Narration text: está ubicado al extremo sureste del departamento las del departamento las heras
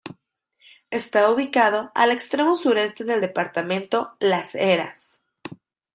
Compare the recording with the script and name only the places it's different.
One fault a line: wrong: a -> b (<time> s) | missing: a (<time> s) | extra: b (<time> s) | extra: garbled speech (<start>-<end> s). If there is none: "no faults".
missing: del departamento las (4.6 s)